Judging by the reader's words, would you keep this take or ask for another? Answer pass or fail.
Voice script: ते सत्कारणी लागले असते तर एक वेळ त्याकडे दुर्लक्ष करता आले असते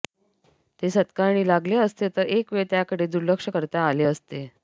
pass